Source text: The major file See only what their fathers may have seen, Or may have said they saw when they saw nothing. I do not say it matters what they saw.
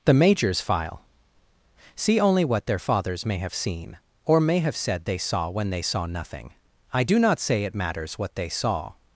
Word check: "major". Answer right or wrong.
wrong